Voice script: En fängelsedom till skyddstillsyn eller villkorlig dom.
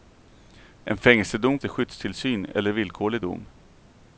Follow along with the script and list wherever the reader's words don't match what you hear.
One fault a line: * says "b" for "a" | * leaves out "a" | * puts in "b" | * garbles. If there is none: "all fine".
all fine